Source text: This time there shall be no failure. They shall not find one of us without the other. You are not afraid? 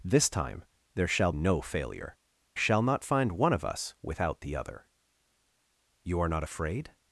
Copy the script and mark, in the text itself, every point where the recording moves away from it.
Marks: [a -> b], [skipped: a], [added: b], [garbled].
This time there shall [skipped: be] no failure. [skipped: They] shall not find one of us without the other. You are not afraid?